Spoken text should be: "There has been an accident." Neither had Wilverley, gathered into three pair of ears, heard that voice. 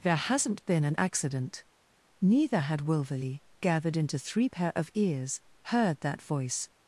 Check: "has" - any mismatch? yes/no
yes